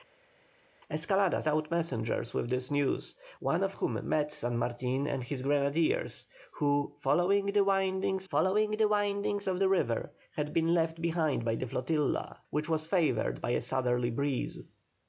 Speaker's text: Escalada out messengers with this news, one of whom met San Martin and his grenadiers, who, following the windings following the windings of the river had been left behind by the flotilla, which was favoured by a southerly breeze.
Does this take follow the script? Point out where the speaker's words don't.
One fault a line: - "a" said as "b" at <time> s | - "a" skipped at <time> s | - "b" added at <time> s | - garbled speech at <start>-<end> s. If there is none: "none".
none